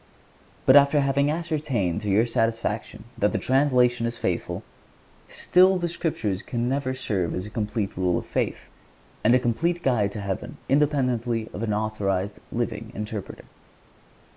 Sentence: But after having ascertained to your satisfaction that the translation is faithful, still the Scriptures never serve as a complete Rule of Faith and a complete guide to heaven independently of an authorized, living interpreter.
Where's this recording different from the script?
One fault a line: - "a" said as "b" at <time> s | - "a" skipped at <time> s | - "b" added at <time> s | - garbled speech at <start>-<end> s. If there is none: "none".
- "can" added at 6.4 s